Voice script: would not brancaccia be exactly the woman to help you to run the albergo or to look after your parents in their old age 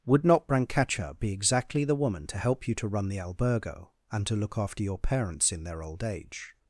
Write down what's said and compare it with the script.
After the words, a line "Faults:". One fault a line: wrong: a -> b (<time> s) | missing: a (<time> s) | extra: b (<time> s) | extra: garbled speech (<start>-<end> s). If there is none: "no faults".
would not brancaccia be exactly the woman to help you to run the albergo and to look after your parents in their old age
Faults:
wrong: or -> and (4.1 s)